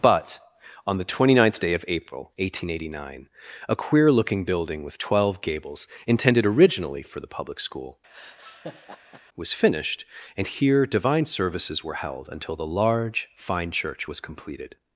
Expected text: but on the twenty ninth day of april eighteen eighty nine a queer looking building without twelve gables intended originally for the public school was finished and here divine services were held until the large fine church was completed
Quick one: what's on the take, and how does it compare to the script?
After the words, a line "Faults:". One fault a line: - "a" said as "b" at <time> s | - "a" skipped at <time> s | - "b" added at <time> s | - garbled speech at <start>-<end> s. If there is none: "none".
but on the twenty ninth day of april eighteen eighty nine a queer looking building with twelve gables intended originally for the public school was finished and here divine services were held until the large fine church was completed
Faults:
- "without" said as "with" at 4.8 s